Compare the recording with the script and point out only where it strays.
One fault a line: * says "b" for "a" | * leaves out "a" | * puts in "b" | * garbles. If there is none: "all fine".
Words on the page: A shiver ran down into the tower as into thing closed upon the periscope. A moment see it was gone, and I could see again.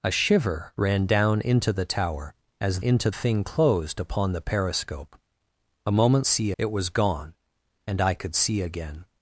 all fine